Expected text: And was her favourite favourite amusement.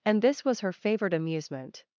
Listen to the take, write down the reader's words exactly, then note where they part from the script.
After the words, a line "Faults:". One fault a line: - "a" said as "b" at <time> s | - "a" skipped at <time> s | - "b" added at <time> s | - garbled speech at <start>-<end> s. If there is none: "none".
And this was her favourite amusement.
Faults:
- "this" added at 0.2 s
- "favourite" skipped at 1.1 s